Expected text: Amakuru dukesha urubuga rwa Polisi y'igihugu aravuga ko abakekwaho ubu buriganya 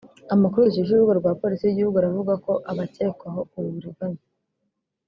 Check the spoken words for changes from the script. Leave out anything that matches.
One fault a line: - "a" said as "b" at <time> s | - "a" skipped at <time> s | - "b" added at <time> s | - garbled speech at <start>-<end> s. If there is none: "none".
none